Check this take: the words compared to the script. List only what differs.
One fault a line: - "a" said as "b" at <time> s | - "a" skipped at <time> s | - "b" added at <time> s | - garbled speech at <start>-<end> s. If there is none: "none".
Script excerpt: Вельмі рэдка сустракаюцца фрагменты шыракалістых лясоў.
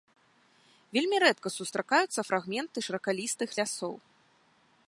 none